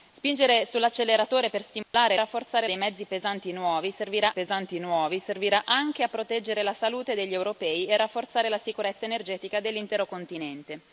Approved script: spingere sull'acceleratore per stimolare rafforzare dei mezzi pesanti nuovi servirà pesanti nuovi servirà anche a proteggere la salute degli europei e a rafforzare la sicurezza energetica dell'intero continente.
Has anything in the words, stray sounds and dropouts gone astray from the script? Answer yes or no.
yes